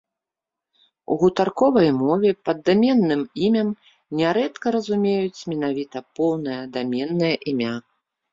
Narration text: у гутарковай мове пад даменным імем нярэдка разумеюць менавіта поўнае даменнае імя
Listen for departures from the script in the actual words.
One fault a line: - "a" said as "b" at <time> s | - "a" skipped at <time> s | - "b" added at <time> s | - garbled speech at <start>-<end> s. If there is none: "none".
none